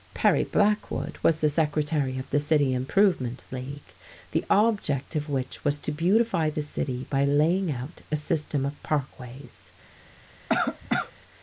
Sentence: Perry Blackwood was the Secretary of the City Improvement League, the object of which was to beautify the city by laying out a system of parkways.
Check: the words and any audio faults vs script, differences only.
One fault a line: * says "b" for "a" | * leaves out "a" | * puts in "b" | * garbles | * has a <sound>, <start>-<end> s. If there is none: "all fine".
* has a cough, 10.5-11.1 s